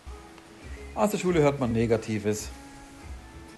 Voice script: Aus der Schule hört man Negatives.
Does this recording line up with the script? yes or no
yes